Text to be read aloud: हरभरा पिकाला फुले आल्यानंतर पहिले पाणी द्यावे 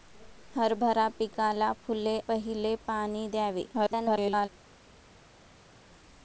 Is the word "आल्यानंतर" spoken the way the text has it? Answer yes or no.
no